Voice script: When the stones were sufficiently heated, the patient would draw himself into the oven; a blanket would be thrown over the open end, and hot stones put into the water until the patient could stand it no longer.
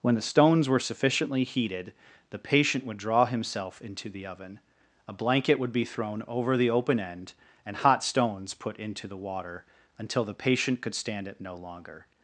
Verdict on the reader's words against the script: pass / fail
pass